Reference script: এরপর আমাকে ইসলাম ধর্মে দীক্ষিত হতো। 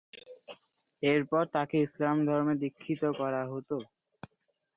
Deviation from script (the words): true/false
true